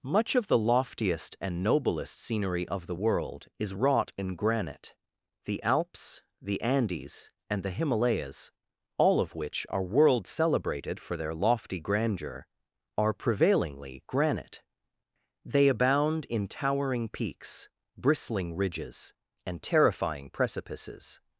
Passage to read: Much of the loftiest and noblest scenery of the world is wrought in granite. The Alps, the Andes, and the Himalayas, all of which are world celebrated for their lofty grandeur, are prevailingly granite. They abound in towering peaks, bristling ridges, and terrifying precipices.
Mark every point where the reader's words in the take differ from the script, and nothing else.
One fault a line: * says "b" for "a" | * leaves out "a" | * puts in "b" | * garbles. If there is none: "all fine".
all fine